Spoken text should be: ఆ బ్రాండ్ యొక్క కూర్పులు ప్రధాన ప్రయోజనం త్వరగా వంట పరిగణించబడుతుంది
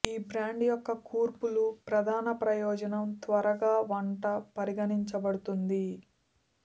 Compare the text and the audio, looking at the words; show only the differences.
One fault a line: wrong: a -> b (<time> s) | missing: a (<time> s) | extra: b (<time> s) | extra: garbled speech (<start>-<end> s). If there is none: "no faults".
wrong: ఆ -> ఈ (0.0 s)